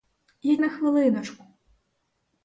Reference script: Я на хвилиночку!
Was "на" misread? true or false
false